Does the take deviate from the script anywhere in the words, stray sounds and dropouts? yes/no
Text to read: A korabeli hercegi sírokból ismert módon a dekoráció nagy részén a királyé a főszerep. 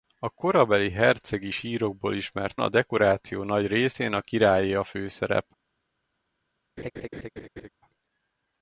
yes